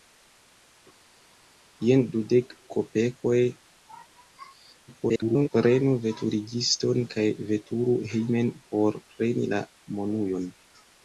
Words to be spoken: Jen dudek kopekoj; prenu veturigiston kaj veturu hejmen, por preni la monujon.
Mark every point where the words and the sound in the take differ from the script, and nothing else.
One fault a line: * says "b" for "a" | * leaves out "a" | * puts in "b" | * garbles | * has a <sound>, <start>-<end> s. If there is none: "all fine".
* garbles